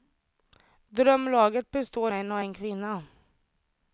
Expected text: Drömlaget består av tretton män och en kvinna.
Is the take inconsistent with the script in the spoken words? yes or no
yes